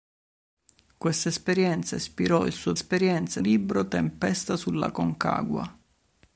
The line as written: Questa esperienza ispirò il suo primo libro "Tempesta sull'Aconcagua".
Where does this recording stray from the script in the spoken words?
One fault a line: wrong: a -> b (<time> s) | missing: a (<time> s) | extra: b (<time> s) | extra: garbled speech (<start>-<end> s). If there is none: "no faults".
wrong: primo -> esperienza (2.7 s)